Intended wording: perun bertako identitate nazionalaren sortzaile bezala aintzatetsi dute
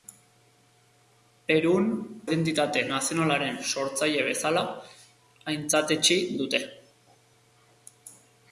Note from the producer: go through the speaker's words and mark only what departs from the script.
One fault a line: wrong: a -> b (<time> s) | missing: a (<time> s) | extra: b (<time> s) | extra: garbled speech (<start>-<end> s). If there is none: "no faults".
missing: bertako (1.9 s)